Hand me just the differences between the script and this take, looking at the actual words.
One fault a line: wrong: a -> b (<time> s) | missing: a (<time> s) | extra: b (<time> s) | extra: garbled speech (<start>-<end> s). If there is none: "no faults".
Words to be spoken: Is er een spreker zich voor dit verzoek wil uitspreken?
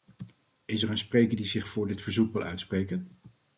extra: die (1.3 s)